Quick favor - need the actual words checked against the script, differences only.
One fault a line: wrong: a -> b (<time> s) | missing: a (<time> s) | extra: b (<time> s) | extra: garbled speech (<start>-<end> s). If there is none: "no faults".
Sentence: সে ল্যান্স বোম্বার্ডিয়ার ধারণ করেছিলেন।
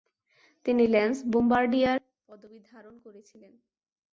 wrong: সে -> তিনি (0.7 s)
extra: পদবী (2.3 s)